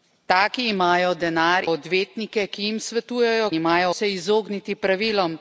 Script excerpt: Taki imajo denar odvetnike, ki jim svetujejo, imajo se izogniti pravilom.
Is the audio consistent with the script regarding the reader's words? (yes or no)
yes